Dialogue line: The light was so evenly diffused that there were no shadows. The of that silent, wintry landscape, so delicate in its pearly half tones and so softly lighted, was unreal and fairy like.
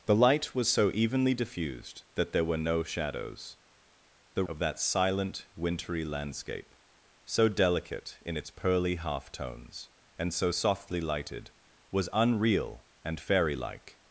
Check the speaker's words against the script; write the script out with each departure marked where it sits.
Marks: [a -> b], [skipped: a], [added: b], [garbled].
The light was so evenly diffused that there were no shadows. The of that silent, wintry landscape, so delicate in its pearly half tones and so softly lighted, was unreal and fairy like.